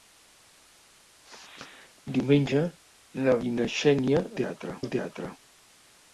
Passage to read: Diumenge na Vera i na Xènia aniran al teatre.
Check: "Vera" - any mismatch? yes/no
yes